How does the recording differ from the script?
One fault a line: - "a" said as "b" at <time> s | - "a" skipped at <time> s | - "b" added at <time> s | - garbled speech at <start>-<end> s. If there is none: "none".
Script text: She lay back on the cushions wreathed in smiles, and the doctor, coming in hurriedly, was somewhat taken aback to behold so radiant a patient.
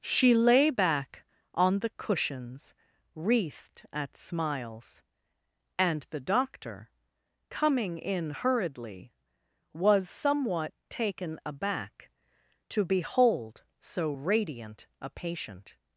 - "in" said as "at" at 3.9 s